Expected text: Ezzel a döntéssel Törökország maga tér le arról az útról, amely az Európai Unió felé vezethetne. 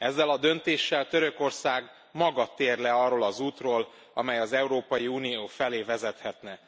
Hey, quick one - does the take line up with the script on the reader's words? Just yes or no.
yes